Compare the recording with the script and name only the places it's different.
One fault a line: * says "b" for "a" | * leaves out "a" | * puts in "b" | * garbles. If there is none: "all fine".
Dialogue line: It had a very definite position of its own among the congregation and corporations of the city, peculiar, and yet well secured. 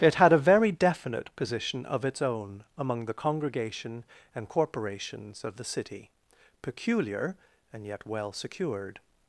all fine